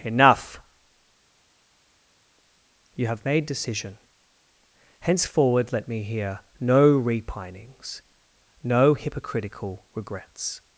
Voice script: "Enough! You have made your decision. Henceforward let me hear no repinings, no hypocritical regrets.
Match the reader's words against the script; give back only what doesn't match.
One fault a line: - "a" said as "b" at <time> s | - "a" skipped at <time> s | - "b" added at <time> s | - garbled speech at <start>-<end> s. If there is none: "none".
- "your" skipped at 3.4 s